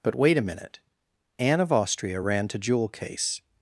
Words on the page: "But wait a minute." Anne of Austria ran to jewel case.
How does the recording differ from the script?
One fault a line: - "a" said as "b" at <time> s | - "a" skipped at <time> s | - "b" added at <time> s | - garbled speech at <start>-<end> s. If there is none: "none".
none